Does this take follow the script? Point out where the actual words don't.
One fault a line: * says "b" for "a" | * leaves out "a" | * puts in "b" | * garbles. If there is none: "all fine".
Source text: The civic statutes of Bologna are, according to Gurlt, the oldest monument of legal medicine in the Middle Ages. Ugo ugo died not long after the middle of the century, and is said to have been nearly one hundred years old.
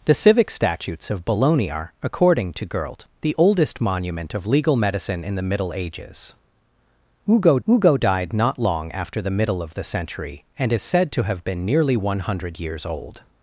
all fine